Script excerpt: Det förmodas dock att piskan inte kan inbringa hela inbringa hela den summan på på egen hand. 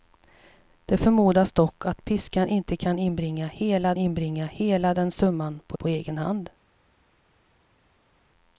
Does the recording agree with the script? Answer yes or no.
yes